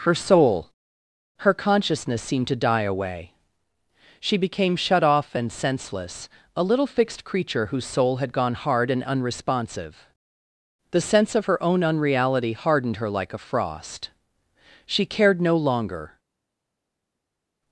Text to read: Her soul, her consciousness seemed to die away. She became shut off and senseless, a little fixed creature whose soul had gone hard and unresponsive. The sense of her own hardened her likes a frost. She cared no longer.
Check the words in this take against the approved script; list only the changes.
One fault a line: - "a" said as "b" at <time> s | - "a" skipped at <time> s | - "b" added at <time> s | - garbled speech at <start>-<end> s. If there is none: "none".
- "unreality" added at 11.8 s
- "likes" said as "like" at 13.1 s